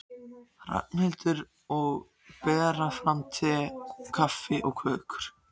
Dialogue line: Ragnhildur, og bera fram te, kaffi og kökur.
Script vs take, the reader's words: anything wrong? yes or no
no